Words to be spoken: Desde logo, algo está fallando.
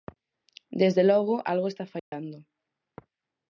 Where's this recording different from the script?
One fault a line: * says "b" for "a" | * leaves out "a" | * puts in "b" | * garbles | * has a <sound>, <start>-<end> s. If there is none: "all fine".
* has a dropout, 2.0-2.1 s